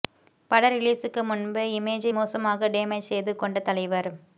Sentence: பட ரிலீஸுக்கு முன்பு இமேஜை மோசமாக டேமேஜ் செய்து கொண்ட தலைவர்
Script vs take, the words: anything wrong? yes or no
no